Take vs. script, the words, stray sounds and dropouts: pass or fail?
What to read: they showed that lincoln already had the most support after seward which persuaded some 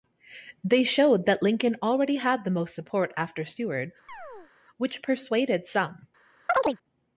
fail